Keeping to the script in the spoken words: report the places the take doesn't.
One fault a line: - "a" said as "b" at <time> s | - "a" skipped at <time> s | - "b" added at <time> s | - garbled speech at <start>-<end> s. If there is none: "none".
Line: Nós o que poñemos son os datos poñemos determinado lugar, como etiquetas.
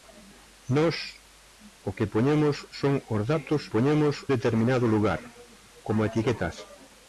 none